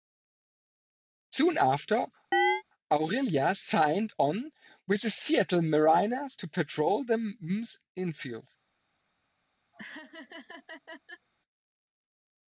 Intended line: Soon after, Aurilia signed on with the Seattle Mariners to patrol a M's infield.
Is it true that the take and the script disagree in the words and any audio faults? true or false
true